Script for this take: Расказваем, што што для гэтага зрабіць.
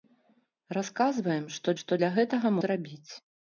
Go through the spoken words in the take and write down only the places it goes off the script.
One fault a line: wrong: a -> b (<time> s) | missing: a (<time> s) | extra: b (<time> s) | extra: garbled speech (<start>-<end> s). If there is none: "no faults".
no faults